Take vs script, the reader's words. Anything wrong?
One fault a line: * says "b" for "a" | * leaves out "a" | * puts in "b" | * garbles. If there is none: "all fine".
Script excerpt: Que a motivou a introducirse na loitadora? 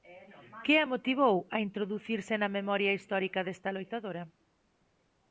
* puts in "memoria histórica desta"